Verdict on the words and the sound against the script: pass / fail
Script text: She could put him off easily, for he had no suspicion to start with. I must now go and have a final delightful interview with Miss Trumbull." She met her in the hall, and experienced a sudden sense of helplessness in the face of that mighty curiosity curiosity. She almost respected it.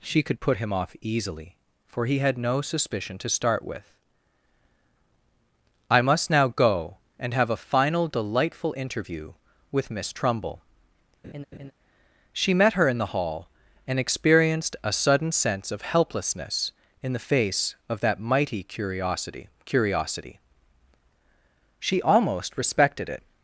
fail